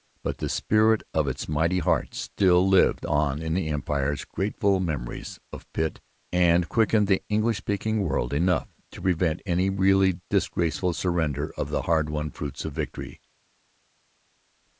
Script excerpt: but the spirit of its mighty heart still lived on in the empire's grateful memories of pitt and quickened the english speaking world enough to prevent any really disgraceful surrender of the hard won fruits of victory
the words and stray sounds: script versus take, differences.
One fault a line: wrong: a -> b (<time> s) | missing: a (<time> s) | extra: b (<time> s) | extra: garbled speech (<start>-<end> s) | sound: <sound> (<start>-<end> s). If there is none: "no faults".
no faults